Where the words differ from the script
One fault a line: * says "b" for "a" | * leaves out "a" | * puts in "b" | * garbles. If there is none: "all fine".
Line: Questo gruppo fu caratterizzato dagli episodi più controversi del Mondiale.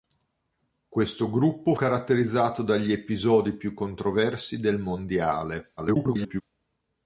* leaves out "fu"
* garbles